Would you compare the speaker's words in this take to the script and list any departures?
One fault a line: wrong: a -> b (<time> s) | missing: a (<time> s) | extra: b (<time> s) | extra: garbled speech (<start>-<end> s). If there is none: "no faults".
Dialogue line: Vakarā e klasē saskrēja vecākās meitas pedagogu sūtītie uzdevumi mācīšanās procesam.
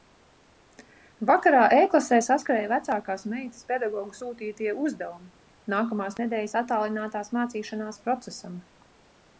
extra: nākamās nedēļas attālinātās (5.8 s)